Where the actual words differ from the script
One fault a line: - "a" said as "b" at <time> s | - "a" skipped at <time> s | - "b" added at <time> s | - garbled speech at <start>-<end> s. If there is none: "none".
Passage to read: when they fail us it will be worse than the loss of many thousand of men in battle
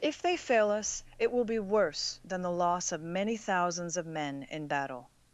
- "when" said as "if" at 0.0 s
- "thousand" said as "thousands" at 3.4 s